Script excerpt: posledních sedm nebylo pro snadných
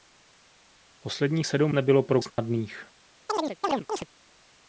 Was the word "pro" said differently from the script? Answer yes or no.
no